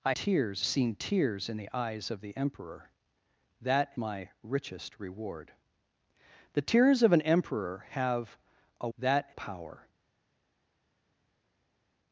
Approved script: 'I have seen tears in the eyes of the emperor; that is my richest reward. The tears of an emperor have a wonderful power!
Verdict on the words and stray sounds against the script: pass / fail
fail